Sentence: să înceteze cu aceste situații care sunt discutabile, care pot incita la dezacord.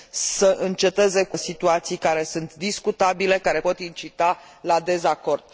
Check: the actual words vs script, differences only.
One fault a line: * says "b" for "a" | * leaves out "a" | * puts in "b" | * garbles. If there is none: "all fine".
* leaves out "aceste"